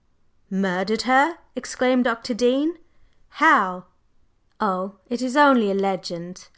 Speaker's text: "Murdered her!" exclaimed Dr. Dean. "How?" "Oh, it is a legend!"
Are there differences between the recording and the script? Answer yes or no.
yes